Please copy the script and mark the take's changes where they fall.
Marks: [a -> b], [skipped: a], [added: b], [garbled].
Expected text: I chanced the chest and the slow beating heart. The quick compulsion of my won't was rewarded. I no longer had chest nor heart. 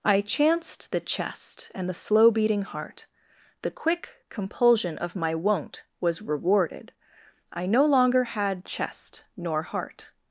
I chanced the chest and the slow beating heart. The quick compulsion of my won't was rewarded. I no longer had chest nor heart.